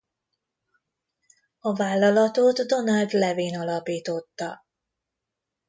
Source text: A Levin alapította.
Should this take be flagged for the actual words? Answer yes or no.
yes